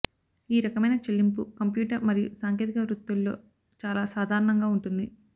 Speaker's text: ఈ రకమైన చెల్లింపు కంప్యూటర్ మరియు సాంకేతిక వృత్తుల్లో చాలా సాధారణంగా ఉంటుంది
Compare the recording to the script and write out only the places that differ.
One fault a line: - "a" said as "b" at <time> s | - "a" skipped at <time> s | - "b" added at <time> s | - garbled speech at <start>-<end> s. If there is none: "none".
none